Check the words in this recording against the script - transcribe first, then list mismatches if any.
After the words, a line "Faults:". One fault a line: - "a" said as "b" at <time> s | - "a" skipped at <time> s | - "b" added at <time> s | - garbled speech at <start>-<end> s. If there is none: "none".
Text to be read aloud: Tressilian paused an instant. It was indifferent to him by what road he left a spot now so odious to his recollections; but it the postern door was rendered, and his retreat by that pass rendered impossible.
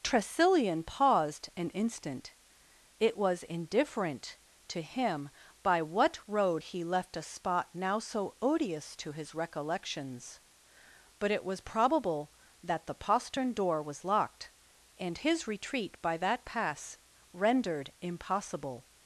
Tressilian paused an instant. It was indifferent to him by what road he left a spot now so odious to his recollections; but it was probable that the postern door was locked, and his retreat by that pass rendered impossible.
Faults:
- "was probable that" added at 11.4 s
- "rendered" said as "locked" at 14.0 s